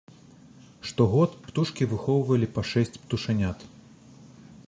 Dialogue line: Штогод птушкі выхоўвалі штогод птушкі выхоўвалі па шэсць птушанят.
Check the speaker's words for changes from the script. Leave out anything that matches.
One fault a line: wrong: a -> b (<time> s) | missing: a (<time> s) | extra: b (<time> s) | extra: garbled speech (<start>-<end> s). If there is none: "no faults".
missing: штогод птушкі выхоўвалі (2.5 s)